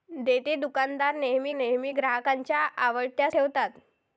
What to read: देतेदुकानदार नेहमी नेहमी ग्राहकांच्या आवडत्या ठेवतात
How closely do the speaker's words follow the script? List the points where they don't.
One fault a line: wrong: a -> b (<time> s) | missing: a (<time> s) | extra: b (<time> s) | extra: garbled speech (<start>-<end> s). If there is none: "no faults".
no faults